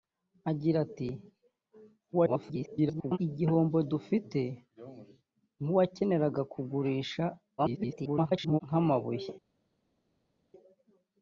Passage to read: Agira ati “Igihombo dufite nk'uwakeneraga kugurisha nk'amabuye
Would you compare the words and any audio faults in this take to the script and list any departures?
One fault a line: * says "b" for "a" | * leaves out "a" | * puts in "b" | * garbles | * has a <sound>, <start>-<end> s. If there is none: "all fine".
* garbles
* garbles